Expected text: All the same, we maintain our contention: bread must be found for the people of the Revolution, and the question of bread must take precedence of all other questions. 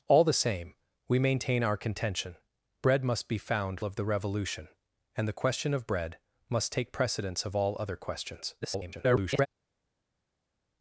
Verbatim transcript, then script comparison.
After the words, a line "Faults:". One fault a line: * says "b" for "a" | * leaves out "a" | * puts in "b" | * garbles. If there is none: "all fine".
All the same, we maintain our contention: bread must be found of the Revolution, and the question of bread must take precedence of all other questions. [garbled]
Faults:
* leaves out "for the people"
* garbles